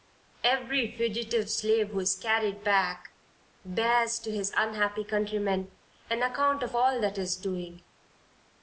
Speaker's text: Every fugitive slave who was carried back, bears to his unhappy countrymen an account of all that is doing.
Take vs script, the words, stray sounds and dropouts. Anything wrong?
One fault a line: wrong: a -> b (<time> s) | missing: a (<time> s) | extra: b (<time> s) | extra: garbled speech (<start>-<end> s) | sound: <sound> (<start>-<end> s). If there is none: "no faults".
wrong: was -> is (2.0 s)